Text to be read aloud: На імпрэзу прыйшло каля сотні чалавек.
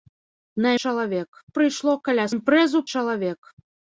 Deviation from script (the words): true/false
true